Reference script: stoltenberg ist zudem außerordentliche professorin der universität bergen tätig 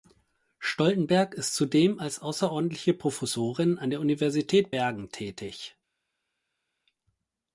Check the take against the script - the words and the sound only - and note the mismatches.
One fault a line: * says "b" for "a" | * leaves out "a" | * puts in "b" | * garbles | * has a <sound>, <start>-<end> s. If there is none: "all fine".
* puts in "als"
* puts in "an"